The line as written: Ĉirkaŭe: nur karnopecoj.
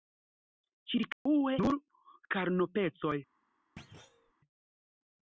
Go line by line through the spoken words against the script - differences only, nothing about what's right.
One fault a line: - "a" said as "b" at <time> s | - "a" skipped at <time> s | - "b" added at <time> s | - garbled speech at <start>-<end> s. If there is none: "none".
none